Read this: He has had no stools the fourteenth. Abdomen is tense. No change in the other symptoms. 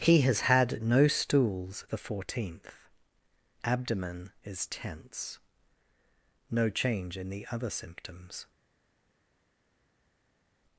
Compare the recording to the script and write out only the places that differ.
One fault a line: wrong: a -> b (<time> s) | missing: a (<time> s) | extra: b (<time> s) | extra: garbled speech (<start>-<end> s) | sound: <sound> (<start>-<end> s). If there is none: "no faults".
no faults